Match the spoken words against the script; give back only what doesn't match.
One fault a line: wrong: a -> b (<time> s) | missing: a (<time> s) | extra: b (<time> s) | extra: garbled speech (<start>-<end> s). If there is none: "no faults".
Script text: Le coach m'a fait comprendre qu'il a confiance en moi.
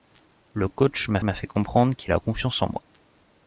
extra: m'a (1.2 s)